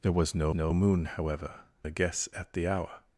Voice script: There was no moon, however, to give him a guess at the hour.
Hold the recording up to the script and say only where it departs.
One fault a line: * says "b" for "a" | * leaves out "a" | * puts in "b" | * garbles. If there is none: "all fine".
* puts in "no"
* leaves out "to give him"